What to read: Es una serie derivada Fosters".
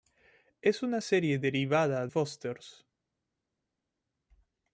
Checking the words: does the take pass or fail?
pass